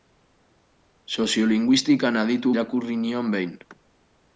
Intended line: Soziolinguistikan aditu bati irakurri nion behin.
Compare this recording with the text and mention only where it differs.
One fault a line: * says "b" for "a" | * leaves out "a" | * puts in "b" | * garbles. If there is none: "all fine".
* leaves out "bati"